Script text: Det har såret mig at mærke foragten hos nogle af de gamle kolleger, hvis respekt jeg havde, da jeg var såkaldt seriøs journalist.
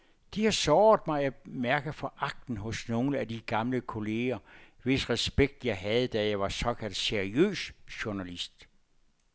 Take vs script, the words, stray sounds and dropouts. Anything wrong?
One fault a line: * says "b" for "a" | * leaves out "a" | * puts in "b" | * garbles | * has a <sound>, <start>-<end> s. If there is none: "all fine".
all fine